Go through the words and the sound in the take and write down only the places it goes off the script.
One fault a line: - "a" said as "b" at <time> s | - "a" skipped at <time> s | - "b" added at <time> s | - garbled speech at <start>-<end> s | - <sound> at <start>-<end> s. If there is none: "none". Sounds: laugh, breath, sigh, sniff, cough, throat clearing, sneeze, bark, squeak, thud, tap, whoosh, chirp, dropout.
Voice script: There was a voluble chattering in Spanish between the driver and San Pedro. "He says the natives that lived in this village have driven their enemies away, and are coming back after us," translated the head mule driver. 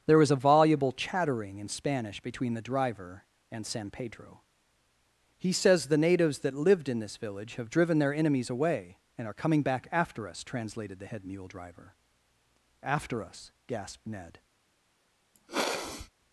- "After us gasped Ned" added at 12.8 s
- sniff at 15.3-16.1 s